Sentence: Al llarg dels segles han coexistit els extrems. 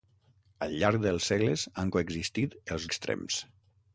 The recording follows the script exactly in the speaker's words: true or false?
true